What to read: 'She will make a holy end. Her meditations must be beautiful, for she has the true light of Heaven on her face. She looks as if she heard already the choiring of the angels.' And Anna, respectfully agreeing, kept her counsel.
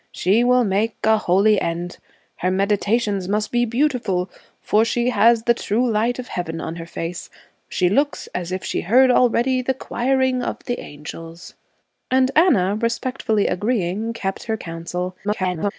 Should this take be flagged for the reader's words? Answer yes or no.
yes